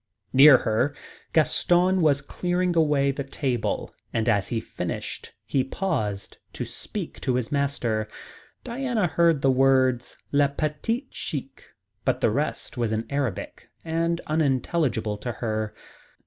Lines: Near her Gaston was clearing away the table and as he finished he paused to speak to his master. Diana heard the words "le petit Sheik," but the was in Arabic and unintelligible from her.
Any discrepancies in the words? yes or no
yes